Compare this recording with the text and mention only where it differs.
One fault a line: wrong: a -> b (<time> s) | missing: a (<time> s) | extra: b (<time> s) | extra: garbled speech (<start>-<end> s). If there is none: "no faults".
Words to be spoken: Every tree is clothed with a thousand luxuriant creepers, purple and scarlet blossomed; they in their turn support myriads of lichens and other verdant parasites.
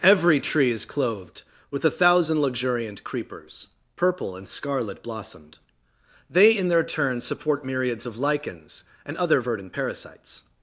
no faults